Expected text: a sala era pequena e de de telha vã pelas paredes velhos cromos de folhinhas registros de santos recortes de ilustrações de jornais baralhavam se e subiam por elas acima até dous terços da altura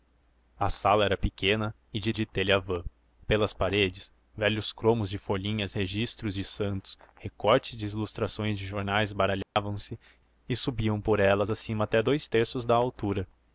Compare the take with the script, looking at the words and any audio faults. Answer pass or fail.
fail